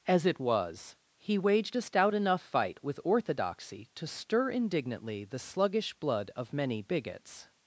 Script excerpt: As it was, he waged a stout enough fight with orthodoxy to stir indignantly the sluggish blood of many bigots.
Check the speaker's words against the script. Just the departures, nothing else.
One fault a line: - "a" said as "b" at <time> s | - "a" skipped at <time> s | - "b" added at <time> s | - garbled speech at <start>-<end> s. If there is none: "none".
none